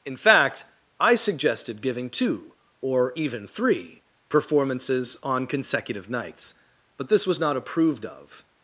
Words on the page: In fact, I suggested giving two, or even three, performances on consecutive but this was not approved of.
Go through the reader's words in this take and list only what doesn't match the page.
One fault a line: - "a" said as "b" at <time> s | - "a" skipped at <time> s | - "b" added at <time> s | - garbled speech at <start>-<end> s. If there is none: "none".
- "nights" added at 6.1 s